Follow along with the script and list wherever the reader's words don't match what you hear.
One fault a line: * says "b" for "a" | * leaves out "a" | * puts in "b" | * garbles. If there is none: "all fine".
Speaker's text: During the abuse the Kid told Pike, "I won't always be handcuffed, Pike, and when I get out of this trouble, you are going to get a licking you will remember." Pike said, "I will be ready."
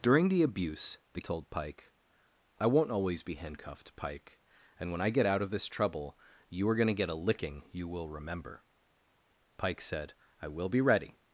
* leaves out "Kid"